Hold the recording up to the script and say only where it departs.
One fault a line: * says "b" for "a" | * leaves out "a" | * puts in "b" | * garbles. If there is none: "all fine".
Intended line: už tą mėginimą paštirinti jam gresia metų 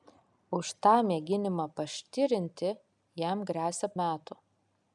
all fine